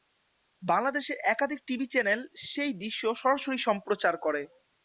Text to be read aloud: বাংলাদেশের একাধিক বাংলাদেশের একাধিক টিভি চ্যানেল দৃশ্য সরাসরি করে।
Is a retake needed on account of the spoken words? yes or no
yes